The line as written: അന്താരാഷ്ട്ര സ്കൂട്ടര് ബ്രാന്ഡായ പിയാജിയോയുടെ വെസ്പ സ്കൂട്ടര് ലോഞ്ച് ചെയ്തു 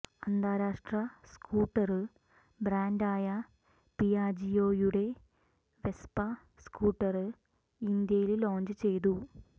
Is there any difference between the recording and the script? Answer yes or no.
yes